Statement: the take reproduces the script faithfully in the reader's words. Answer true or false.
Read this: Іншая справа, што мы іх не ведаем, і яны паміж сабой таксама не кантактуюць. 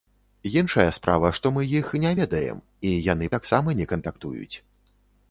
false